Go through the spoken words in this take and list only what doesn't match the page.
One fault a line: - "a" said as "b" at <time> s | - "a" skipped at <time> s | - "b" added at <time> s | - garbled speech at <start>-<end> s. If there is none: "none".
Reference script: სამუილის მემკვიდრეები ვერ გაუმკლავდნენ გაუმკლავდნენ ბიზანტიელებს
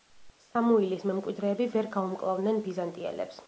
- "გაუმკლავდნენ" skipped at 2.6 s